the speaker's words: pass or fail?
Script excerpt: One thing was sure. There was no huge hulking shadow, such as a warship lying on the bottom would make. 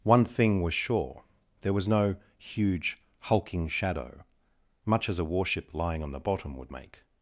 fail